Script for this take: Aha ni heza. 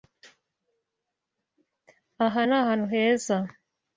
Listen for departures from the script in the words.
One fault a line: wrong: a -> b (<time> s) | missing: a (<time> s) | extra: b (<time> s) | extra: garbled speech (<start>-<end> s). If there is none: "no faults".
extra: ahantu (2.6 s)